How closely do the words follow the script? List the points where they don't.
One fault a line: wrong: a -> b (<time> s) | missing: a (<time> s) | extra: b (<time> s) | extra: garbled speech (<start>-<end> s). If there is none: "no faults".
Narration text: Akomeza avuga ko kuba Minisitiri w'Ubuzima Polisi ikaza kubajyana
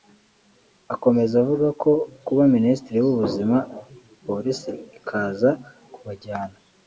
no faults